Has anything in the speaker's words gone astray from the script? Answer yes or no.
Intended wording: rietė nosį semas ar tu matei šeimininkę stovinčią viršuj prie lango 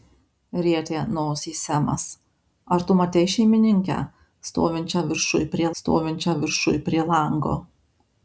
yes